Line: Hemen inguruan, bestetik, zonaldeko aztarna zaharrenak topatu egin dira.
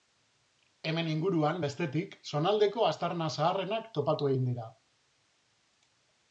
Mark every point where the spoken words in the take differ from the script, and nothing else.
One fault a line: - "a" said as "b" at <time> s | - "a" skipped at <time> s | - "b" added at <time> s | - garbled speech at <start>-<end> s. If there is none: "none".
none